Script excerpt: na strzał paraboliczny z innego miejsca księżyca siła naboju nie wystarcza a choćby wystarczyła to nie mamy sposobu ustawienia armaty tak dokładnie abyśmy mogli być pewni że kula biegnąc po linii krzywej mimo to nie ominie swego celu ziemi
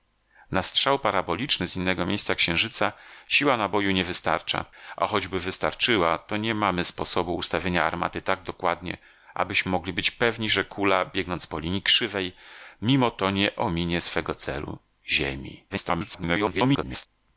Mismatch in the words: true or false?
true